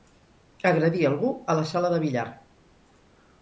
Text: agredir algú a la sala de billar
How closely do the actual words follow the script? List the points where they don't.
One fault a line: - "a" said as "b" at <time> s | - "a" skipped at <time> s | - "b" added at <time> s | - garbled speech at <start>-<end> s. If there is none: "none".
none